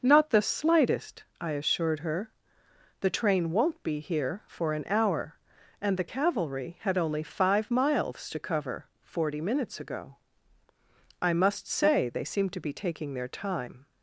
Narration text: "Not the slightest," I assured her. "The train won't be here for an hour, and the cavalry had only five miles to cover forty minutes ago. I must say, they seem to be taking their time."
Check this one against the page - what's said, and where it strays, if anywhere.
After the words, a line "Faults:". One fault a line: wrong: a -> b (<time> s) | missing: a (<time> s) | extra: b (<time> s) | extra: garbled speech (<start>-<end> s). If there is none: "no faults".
"Not the slightest," I assured her. "The train won't be here for an hour, and the cavalry had only five miles to cover forty minutes ago. I must say, they seem to be taking their time."
Faults:
no faults